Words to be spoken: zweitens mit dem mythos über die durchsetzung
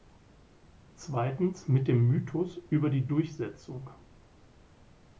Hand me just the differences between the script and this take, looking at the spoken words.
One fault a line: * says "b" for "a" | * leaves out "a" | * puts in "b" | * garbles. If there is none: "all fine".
all fine